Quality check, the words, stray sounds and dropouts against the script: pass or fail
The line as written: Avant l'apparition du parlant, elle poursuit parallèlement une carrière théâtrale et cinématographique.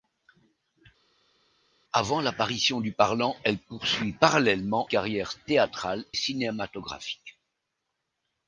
fail